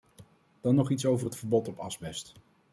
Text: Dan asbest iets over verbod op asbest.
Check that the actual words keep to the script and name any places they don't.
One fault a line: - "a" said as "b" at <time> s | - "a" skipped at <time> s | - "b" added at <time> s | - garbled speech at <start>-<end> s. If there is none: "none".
- "asbest" said as "nog" at 0.8 s
- "het" added at 1.2 s